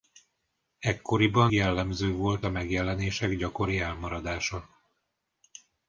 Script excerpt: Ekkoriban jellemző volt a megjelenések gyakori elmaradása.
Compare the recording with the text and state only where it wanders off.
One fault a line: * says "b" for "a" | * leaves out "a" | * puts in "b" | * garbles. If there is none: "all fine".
all fine